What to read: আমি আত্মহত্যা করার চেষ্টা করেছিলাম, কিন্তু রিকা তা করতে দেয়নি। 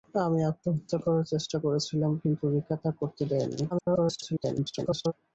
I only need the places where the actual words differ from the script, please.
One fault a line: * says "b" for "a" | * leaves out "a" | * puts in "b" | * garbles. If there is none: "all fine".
* garbles